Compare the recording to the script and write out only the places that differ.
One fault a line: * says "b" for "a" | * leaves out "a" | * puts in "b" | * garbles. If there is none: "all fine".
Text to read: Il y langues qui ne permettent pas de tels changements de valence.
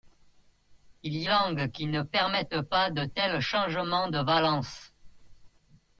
all fine